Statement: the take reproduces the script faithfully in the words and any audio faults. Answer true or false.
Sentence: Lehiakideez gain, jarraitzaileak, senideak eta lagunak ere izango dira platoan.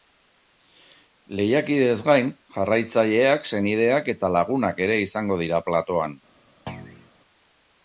false